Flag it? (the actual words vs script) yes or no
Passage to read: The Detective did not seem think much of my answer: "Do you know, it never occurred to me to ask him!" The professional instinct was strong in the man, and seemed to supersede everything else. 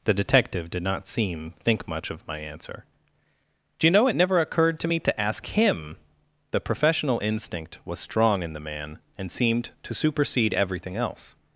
no